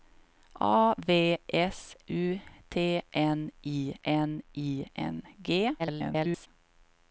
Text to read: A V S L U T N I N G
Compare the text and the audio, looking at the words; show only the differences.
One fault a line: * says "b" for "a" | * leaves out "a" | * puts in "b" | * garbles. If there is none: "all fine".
* leaves out "L"
* puts in "I N"
* garbles